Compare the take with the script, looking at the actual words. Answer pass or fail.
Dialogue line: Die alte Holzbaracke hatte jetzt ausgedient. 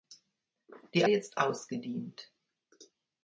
fail